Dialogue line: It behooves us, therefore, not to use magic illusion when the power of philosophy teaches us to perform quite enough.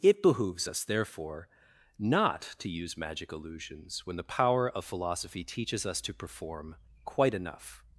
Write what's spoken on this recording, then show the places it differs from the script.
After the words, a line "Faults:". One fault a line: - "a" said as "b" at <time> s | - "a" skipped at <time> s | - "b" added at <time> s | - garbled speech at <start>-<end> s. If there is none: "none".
It behooves us, therefore, not to use magic illusions when the power of philosophy teaches us to perform quite enough.
Faults:
- "illusion" said as "illusions" at 3.3 s